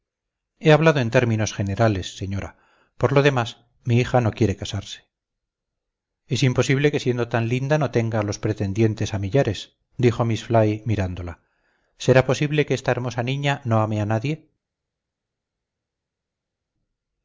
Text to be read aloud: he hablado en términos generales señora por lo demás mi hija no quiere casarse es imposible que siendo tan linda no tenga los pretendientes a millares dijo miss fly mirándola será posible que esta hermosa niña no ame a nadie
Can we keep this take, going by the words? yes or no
yes